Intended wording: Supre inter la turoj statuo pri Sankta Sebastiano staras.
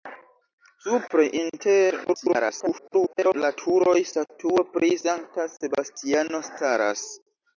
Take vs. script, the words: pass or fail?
fail